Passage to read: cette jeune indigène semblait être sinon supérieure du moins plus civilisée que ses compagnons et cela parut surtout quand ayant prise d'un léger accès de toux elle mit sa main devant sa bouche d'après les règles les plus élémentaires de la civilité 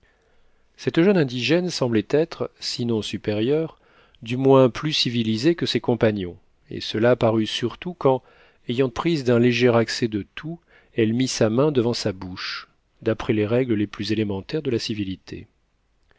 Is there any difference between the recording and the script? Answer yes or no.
no